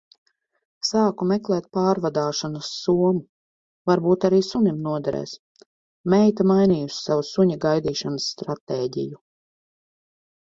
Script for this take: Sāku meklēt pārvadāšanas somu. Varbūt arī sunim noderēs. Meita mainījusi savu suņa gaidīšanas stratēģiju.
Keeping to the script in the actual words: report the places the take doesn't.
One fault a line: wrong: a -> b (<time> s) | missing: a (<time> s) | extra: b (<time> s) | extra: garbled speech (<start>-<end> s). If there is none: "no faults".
no faults